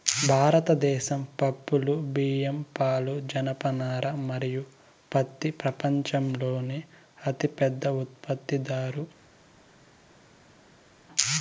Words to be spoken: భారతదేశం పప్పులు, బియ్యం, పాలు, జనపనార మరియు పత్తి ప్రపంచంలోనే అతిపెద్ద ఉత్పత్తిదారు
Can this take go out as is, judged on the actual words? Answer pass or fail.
pass